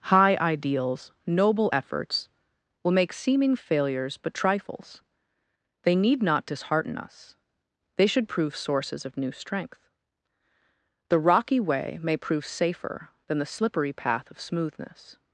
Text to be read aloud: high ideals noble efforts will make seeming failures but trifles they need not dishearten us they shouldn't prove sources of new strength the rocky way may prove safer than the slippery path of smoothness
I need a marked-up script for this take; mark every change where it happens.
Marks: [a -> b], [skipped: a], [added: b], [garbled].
high ideals noble efforts will make seeming failures but trifles they need not dishearten us they [shouldn't -> should] prove sources of new strength the rocky way may prove safer than the slippery path of smoothness